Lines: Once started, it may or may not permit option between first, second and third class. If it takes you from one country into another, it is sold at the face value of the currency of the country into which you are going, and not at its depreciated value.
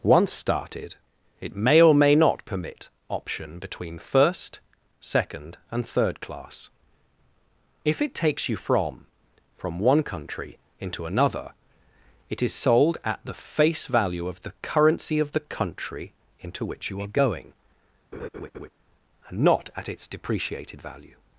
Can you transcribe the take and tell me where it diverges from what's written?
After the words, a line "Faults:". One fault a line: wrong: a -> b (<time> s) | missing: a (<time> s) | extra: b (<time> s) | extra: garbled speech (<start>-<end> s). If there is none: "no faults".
Once started, it may or may not permit option between first, second and third class. If it takes you from from one country into another, it is sold at the face value of the currency of the country into which you are going, and not at its depreciated value.
Faults:
extra: from (9.6 s)